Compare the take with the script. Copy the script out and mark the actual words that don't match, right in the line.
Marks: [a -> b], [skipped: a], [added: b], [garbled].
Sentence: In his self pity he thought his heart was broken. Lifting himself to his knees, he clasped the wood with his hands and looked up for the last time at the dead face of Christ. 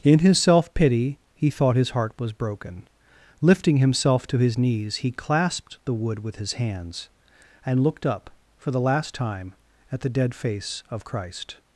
In his self pity he thought his heart was broken. Lifting himself to his knees, he clasped the wood with his hands and looked up for the last time at the dead face of Christ.